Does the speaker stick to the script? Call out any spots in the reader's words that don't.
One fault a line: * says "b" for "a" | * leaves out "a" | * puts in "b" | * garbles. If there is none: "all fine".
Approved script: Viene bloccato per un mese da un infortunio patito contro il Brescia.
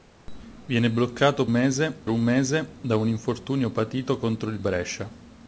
* says "mese" for "per"